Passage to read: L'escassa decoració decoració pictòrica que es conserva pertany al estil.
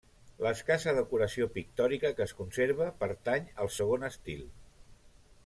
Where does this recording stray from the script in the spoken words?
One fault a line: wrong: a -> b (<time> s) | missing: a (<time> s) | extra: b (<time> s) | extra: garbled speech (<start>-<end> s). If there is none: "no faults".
missing: decoració (1.5 s)
extra: segon (3.8 s)